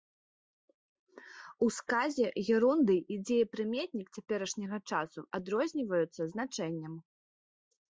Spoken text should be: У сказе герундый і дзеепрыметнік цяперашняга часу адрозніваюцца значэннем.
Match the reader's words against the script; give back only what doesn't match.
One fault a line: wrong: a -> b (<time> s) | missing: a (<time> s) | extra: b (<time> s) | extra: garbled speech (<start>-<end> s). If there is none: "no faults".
no faults